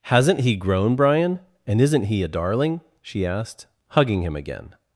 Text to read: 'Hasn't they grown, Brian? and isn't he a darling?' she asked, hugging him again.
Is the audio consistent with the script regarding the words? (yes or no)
no